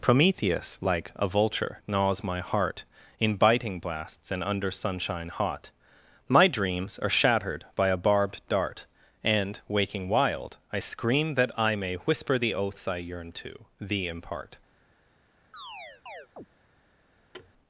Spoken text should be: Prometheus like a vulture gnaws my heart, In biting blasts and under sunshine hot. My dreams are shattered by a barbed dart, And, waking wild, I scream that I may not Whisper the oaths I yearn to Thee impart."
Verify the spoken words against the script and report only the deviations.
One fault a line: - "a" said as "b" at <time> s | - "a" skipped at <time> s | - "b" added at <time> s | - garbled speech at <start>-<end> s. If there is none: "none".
- "not" skipped at 12.0 s